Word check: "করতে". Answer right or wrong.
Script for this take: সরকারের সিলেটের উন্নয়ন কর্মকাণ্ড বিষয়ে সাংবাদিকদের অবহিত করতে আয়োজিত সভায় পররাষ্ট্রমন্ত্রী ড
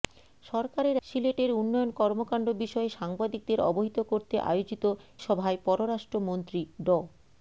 right